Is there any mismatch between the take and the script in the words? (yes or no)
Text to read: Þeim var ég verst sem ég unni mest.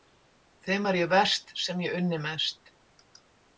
no